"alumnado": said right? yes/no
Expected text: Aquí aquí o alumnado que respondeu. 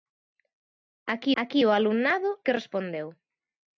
yes